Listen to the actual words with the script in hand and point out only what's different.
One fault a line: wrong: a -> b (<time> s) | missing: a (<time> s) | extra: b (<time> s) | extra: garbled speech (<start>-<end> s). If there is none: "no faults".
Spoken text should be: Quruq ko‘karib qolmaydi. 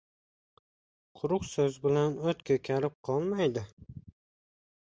extra: so‘z bilan o‘t (1.5 s)